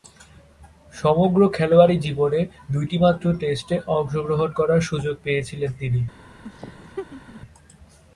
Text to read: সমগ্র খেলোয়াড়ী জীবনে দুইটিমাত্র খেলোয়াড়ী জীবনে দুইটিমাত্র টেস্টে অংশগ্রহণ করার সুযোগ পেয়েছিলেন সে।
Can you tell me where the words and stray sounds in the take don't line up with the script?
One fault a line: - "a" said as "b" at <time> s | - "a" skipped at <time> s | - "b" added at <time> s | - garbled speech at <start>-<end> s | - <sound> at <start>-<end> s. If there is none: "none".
- "খেলোয়াড়ী জীবনে দুইটিমাত্র" skipped at 3.2 s
- "সে" said as "তিনি" at 5.8 s
- laugh at 6.4-7.4 s